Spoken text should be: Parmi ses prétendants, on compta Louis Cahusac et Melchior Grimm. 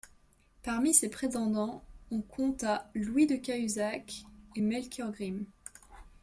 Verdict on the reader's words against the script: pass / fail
fail